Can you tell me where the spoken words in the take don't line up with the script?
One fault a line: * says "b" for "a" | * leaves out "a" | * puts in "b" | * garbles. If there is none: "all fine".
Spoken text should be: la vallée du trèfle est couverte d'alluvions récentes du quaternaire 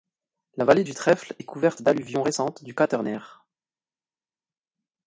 all fine